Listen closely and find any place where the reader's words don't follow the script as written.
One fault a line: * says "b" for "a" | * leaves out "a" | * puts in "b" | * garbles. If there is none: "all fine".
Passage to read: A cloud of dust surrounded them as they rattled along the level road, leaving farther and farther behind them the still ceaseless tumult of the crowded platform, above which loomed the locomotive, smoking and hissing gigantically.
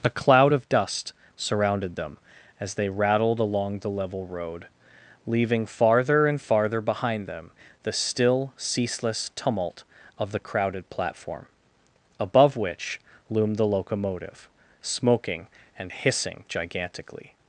all fine